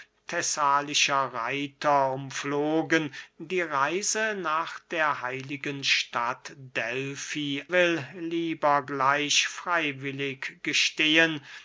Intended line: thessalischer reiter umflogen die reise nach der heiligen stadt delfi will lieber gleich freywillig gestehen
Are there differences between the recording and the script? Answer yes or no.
no